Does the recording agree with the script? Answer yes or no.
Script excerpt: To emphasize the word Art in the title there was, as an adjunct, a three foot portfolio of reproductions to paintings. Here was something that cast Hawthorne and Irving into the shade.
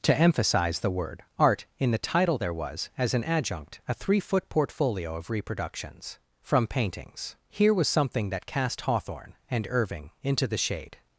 no